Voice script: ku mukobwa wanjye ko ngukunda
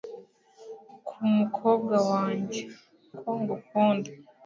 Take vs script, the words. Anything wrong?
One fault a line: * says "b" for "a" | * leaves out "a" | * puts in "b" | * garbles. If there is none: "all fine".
all fine